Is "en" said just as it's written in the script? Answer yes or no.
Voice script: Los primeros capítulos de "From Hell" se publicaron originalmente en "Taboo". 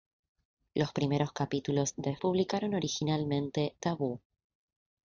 no